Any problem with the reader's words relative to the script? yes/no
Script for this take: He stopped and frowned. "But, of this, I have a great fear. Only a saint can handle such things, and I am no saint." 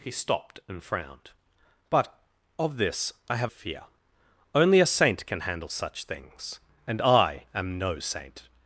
yes